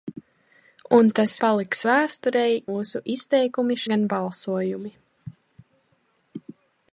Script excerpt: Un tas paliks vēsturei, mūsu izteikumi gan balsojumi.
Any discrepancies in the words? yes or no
no